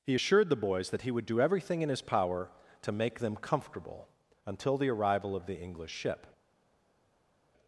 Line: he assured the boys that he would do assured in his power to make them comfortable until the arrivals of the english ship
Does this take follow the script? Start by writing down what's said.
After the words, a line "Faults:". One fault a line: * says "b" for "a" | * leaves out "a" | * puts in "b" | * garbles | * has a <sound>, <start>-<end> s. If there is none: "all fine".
he assured the boys that he would do everything in his power to make them comfortable until the arrival of the english ship
Faults:
* says "everything" for "assured"
* says "arrival" for "arrivals"